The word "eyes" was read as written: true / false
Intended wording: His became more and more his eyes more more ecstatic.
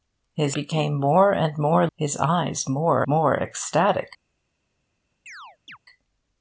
true